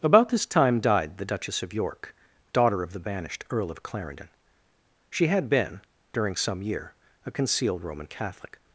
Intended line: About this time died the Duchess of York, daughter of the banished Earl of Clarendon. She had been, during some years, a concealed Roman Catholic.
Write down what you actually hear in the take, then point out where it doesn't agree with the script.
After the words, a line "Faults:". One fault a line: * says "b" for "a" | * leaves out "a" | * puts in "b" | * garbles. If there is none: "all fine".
About this time died the Duchess of York, daughter of the banished Earl of Clarendon. She had been, during some year, a concealed Roman Catholic.
Faults:
* says "year" for "years"